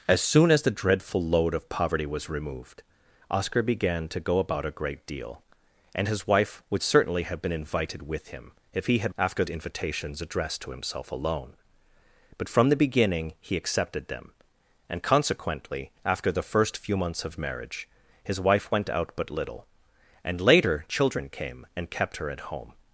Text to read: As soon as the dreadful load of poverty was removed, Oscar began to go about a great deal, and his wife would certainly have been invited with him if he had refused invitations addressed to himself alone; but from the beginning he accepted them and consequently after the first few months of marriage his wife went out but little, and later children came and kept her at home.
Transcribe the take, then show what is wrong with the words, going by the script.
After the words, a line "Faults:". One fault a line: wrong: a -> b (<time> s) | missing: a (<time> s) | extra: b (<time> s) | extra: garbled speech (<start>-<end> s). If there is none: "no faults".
As soon as the dreadful load of poverty was removed, Oscar began to go about a great deal, and his wife would certainly have been invited with him if he had after invitations addressed to himself alone; but from the beginning he accepted them and consequently after the first few months of marriage his wife went out but little, and later children came and kept her at home.
Faults:
wrong: refused -> after (9.2 s)